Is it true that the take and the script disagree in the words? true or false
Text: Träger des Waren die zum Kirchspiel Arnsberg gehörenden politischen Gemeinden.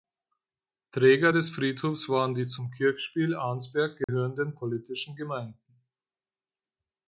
true